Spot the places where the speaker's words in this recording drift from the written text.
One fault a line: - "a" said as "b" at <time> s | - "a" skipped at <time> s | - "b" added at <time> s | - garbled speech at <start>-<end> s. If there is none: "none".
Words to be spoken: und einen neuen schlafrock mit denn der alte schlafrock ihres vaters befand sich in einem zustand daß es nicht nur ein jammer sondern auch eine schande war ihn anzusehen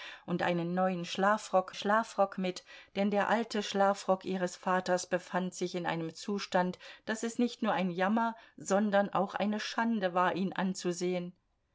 - "schlafrock" added at 1.7 s